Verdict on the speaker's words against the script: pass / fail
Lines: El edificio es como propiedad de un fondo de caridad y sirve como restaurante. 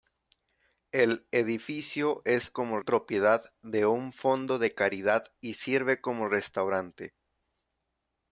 pass